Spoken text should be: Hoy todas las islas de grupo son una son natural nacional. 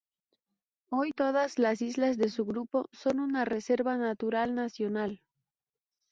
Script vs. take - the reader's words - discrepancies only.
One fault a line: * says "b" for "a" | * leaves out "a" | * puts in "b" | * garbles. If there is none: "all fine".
* puts in "su"
* says "reserva" for "son"